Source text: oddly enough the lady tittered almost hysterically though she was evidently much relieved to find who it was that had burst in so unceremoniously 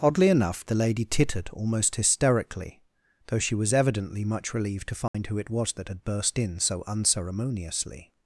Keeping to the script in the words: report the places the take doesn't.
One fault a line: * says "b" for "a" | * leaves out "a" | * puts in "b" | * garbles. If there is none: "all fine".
all fine